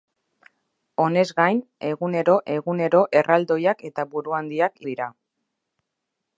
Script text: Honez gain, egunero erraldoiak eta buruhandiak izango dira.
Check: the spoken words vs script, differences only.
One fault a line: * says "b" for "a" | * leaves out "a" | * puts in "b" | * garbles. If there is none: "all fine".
* puts in "egunero"
* leaves out "izango"